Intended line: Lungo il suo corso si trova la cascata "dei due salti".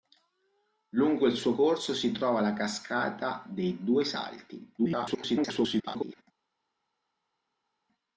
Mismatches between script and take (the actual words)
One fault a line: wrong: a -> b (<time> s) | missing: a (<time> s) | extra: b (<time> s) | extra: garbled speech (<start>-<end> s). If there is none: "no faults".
extra: garbled speech (4.8-6.2 s)